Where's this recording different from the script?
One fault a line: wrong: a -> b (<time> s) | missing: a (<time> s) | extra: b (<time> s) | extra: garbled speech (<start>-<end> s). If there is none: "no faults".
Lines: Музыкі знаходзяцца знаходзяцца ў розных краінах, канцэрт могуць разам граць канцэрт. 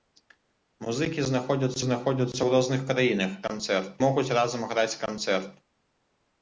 no faults